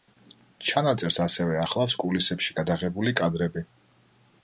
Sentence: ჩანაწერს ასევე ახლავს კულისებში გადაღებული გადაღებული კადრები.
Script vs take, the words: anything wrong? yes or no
yes